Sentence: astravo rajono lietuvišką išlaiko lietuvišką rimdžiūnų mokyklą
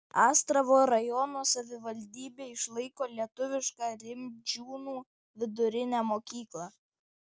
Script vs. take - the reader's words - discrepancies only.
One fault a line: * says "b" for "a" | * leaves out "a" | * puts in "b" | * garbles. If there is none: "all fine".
* says "savivaldybė" for "lietuvišką"
* puts in "vidurinę"